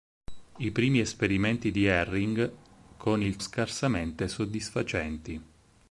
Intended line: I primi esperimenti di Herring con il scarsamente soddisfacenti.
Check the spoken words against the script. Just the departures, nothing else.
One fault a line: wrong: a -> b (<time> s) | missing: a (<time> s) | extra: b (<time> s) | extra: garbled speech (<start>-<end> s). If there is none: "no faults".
no faults